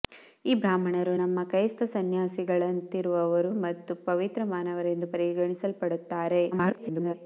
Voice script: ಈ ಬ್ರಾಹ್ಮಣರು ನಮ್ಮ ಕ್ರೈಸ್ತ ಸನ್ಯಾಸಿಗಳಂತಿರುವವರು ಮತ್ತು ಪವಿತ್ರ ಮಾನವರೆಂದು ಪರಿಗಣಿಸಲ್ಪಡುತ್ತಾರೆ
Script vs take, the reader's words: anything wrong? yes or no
yes